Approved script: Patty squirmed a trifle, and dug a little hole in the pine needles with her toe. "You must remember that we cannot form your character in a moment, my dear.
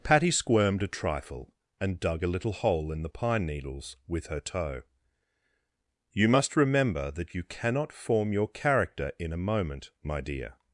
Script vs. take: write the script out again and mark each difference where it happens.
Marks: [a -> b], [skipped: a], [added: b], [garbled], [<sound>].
Patty squirmed a trifle, and dug a little hole in the pine needles with her toe. "You must remember that [we -> you] cannot form your character in a moment, my dear.